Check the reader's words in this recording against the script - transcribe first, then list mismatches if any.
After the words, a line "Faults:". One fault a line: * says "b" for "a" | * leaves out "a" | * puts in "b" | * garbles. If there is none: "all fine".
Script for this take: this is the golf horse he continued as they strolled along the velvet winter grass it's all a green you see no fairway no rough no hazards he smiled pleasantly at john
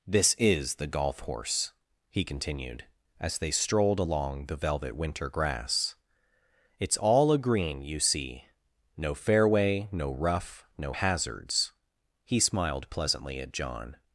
this is the golf horse he continued as they strolled along the velvet winter grass it's all a green you see no fairway no rough no hazards he smiled pleasantly at john
Faults:
all fine